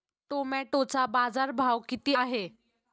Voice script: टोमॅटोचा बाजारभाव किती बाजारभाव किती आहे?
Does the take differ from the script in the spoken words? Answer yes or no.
yes